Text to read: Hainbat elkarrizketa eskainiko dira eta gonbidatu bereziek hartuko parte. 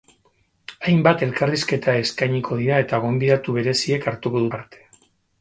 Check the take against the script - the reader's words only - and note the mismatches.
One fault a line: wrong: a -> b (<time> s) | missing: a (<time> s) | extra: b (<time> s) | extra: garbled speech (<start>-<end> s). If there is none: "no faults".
no faults